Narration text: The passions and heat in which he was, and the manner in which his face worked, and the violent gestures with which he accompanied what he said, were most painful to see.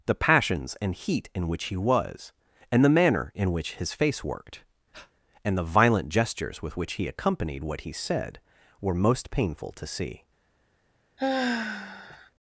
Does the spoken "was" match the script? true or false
true